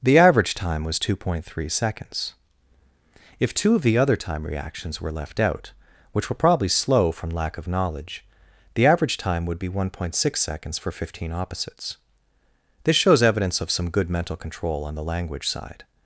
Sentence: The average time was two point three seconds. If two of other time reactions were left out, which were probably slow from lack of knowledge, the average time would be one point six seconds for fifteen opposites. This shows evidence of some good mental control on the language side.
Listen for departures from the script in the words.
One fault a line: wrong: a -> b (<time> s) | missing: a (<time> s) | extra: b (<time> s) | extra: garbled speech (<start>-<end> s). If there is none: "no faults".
extra: the (3.8 s)